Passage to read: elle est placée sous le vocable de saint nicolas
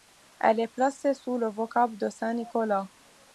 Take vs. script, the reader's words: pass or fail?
pass